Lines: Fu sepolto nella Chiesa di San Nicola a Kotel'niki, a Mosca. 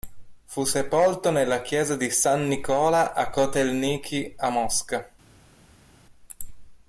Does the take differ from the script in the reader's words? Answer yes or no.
no